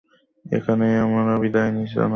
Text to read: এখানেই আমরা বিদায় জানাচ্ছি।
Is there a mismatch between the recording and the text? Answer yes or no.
no